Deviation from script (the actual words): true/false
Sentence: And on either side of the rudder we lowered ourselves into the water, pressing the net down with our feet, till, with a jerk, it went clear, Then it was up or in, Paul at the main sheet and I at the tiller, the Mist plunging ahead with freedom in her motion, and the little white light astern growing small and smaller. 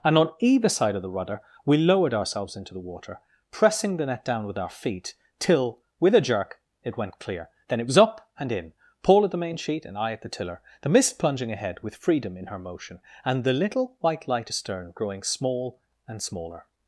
true